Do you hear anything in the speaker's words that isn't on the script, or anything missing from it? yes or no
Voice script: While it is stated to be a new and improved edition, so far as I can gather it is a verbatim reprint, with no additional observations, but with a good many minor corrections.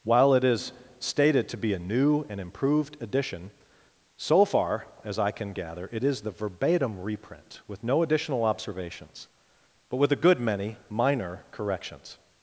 yes